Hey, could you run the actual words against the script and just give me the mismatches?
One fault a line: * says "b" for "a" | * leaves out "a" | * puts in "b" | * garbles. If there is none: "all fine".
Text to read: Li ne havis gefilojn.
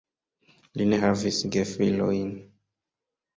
all fine